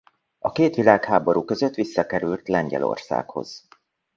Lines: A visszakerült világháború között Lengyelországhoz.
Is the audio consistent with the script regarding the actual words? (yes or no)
no